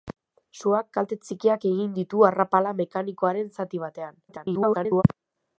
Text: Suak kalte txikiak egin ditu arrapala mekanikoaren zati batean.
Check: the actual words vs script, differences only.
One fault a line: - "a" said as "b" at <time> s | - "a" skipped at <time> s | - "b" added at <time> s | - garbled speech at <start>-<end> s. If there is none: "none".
- garbled speech at 4.3-5.0 s